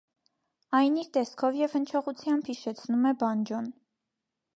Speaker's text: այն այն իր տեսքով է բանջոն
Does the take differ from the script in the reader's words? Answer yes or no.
yes